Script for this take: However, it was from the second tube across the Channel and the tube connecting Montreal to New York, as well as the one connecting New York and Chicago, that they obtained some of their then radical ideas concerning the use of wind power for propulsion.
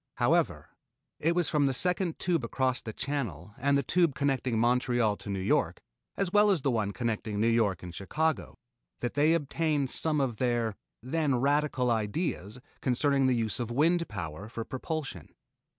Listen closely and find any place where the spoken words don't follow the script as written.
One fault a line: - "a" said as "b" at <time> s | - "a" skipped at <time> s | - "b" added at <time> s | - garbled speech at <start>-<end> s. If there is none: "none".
none